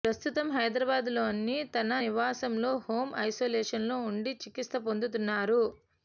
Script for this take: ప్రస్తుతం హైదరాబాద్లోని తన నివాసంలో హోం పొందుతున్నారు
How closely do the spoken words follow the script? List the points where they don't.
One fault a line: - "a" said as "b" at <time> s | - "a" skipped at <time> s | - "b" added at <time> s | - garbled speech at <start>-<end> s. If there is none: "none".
- "ఐసోలేషన్లో ఉండి చికిత్స" added at 3.2 s